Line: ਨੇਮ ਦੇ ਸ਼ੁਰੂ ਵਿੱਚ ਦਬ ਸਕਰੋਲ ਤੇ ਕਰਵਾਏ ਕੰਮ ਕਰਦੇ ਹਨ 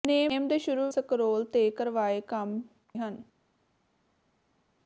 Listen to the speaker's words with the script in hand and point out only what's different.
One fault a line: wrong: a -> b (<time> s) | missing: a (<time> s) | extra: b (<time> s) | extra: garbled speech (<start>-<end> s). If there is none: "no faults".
missing: ਵਿੱਚ ਦਬ (0.9 s)
missing: ਕਰਦੇ (2.6 s)